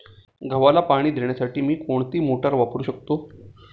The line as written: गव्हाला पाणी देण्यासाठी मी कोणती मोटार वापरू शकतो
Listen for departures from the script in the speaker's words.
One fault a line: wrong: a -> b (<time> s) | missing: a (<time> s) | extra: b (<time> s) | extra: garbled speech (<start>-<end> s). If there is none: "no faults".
no faults